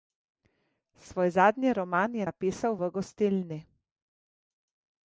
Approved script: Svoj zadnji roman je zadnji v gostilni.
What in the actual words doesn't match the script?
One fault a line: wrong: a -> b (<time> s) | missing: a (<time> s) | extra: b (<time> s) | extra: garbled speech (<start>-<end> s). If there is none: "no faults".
wrong: zadnji -> napisal (2.2 s)